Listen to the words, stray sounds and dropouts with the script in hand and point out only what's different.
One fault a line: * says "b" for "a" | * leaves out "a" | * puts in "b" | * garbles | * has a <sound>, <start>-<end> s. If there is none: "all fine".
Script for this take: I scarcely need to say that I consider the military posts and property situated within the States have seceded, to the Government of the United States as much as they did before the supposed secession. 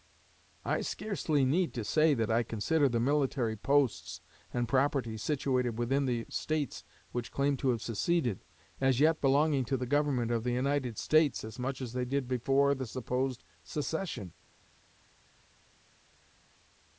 * puts in "which claim to"
* puts in "as yet belonging"